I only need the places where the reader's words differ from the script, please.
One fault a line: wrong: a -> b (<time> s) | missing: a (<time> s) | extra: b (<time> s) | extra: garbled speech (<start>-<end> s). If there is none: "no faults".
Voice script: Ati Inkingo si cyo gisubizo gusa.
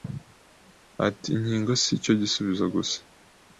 no faults